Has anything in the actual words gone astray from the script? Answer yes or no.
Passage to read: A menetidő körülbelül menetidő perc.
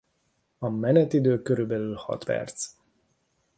yes